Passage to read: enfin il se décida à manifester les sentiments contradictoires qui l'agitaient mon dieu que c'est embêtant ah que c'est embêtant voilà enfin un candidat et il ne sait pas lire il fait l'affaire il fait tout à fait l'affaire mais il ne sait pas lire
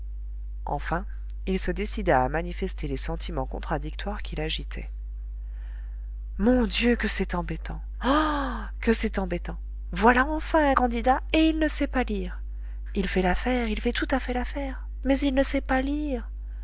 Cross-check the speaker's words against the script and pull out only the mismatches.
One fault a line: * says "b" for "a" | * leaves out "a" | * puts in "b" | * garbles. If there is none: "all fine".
all fine